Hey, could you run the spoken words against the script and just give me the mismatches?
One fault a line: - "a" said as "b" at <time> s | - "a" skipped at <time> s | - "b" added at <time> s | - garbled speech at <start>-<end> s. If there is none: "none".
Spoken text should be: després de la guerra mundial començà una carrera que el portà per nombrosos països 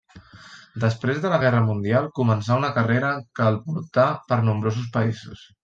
none